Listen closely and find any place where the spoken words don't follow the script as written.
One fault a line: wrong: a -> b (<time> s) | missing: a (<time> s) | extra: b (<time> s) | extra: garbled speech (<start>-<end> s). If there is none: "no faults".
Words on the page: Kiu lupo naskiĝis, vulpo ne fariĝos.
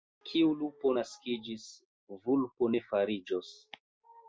no faults